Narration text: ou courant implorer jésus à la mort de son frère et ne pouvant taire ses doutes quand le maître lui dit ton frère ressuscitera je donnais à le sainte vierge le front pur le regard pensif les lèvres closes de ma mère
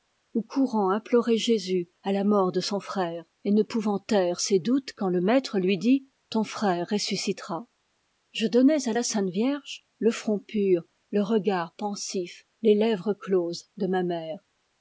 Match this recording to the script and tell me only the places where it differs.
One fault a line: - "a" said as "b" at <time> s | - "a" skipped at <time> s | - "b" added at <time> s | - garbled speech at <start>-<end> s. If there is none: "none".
- "le" said as "la" at 8.9 s